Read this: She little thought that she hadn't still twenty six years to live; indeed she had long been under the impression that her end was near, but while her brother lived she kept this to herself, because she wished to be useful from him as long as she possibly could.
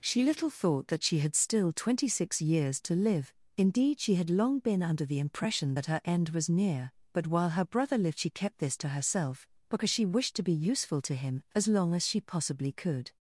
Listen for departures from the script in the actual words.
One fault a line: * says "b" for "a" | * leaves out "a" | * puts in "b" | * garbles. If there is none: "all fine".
* says "had" for "hadn't"
* says "to" for "from"